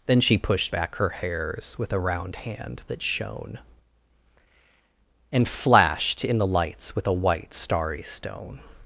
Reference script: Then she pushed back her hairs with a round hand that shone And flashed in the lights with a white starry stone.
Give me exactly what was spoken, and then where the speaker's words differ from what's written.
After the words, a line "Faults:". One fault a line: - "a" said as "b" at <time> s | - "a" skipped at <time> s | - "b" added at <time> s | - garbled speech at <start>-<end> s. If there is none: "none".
Then she pushed back her hairs with a round hand that shone And flashed in the lights with a white starry stone.
Faults:
none